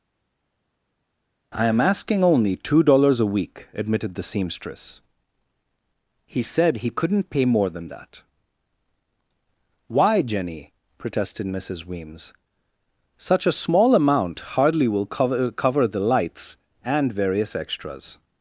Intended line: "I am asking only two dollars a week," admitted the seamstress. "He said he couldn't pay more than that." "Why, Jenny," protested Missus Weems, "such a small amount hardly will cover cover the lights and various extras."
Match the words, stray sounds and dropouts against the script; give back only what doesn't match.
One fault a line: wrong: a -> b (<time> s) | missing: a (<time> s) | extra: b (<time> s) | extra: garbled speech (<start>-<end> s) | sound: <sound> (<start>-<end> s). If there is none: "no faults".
no faults